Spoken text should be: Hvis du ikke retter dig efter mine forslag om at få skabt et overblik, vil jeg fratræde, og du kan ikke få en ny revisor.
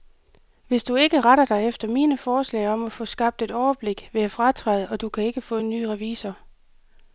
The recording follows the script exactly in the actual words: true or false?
true